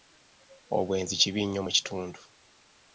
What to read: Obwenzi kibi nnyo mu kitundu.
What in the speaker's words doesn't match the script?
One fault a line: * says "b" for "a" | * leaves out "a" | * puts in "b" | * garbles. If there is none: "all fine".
all fine